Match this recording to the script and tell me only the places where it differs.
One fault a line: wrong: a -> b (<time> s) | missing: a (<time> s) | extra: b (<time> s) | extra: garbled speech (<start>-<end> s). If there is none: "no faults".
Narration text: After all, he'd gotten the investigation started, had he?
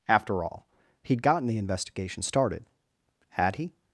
no faults